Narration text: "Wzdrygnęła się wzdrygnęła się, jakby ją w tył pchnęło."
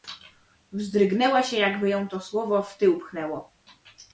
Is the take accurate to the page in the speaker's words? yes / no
no